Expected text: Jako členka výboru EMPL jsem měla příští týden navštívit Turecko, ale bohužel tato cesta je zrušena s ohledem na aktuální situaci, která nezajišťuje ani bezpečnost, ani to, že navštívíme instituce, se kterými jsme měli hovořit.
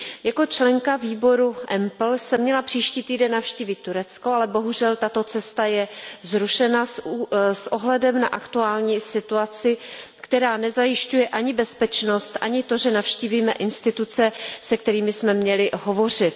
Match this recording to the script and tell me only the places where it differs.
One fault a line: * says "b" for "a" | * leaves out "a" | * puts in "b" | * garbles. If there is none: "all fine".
all fine